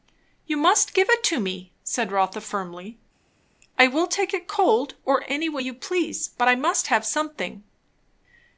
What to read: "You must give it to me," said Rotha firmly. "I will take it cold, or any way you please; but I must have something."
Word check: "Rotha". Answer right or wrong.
right